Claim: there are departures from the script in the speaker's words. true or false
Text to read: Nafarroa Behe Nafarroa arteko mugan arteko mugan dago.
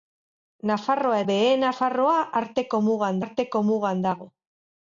false